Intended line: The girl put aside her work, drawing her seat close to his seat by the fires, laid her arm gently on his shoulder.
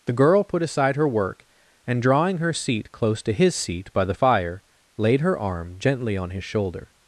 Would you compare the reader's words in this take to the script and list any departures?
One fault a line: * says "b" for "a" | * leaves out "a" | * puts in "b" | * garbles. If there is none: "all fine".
* puts in "and"
* says "fire" for "fires"